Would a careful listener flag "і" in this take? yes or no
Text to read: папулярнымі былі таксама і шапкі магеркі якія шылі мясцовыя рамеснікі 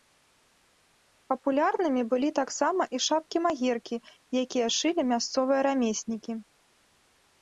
no